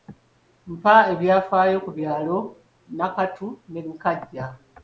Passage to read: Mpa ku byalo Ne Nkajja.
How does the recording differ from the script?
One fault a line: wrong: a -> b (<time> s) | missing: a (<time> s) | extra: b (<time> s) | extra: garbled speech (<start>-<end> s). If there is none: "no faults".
extra: ebyafaayo (1.1 s)
extra: Nakatu (3.0 s)